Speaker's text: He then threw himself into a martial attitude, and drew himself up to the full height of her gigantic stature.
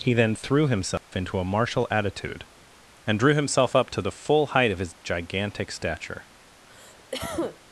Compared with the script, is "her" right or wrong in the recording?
wrong